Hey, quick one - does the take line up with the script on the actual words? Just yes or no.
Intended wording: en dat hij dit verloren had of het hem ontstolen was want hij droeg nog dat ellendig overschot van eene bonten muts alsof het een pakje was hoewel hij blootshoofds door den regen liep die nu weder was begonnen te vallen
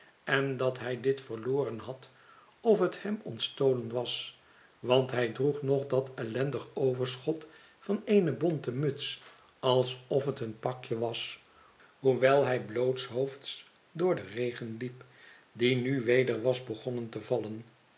yes